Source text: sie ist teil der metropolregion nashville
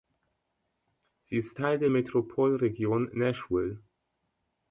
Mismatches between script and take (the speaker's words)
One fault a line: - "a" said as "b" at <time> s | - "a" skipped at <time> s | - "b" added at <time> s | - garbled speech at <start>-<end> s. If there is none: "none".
none